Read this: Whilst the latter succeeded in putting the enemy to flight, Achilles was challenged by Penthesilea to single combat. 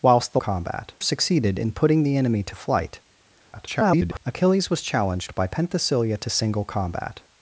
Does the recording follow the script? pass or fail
fail